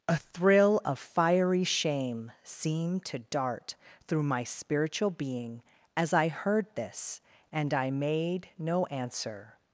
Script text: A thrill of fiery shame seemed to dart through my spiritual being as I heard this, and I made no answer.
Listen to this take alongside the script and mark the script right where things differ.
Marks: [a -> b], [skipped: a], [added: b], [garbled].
A thrill of fiery shame seemed to dart through my spiritual being as I heard this, and I made no answer.